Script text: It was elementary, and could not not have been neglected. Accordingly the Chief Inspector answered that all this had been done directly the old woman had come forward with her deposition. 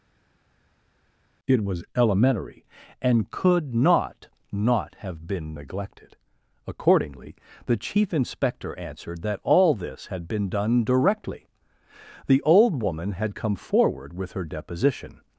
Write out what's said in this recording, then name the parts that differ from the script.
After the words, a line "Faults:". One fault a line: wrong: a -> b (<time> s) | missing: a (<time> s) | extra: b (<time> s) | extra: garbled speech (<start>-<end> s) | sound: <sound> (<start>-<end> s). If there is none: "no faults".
It was elementary, and could not not have been neglected. Accordingly the Chief Inspector answered that all this had been done directly the old woman had come forward with her deposition.
Faults:
no faults